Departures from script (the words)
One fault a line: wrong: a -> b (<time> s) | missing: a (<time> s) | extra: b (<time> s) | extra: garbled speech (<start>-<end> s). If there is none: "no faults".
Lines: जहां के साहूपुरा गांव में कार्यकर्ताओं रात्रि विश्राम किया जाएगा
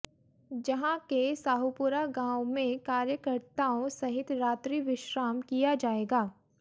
extra: सहित (3.9 s)